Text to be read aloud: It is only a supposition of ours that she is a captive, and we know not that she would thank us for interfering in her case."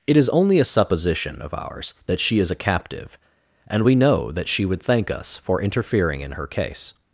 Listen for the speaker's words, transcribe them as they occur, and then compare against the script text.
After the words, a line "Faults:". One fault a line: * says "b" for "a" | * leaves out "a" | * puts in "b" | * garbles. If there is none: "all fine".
It is only a supposition of ours that she is a captive, and we know that she would thank us for interfering in her case."
Faults:
* leaves out "not"